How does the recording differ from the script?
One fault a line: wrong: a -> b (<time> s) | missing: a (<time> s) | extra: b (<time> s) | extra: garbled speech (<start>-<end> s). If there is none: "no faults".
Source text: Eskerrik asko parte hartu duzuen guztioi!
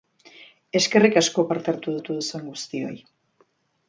extra: hartu (2.0 s)